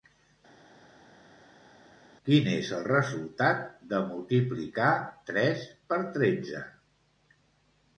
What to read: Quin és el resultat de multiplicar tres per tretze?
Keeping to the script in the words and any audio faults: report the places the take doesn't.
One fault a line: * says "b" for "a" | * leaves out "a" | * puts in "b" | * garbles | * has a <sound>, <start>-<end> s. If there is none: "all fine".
all fine